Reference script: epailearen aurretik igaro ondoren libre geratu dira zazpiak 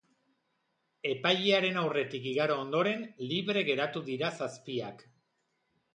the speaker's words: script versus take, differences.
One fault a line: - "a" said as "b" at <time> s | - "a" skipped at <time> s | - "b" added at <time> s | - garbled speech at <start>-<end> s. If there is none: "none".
none